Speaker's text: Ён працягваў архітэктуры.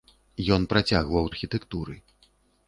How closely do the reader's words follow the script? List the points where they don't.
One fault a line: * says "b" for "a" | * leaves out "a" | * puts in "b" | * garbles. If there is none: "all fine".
all fine